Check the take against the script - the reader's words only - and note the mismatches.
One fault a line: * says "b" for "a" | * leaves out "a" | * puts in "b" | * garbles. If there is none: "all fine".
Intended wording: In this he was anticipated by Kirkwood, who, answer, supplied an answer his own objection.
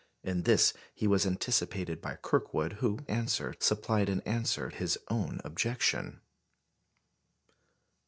all fine